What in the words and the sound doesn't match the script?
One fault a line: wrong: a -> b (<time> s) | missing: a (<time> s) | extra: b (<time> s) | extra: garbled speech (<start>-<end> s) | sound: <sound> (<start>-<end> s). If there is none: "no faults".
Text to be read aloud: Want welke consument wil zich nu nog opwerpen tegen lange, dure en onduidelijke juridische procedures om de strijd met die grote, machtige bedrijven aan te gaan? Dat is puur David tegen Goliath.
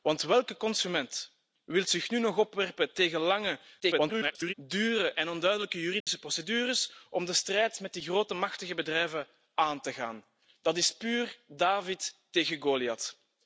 extra: garbled speech (3.8-4.5 s)
sound: dropout (6.0-6.1 s)